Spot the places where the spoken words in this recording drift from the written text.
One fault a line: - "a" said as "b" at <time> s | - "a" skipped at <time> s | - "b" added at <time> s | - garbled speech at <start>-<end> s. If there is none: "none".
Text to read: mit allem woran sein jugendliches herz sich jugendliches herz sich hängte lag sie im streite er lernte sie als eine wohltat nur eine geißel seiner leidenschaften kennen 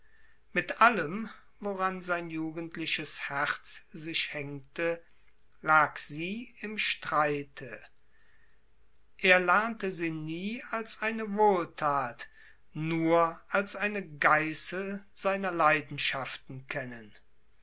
- "jugendliches herz sich" skipped at 4.3 s
- "nie" added at 10.1 s
- "als" added at 13.5 s